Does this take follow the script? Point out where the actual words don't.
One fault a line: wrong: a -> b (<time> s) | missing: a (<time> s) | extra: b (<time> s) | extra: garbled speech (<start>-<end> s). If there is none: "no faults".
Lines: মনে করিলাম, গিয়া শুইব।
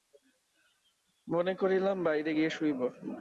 extra: বাহিরে (2.0 s)